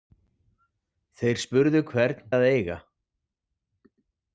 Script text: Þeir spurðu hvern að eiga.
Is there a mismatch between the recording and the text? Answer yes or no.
no